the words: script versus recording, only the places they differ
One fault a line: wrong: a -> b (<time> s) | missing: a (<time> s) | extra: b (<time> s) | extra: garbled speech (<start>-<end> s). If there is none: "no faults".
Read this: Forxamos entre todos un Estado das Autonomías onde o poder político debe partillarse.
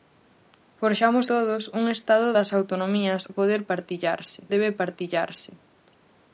missing: entre (1.2 s)
missing: onde (3.2 s)
wrong: político -> partillarse (3.7 s)